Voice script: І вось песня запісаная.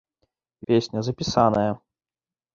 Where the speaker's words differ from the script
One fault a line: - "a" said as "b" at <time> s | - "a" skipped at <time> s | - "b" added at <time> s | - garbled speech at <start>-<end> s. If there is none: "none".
- "вось" skipped at 0.7 s